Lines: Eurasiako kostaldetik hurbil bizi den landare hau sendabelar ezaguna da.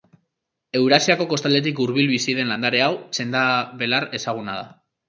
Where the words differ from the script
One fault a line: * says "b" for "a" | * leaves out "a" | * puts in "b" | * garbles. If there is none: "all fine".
all fine